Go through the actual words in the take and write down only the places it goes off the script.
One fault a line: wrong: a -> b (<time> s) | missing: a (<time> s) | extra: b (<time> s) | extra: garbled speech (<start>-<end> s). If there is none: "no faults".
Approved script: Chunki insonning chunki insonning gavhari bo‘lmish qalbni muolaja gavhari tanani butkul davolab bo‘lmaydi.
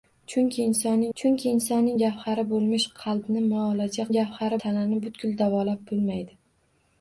no faults